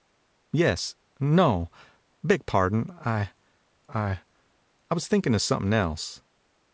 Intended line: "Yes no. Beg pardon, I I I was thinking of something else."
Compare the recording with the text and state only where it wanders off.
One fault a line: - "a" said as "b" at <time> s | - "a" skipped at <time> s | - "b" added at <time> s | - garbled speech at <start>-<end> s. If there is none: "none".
none